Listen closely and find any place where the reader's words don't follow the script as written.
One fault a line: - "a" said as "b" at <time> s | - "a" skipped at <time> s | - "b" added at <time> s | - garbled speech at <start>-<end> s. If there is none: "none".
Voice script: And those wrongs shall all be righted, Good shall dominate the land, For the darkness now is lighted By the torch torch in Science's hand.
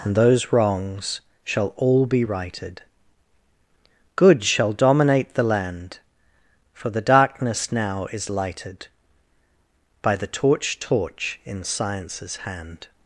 none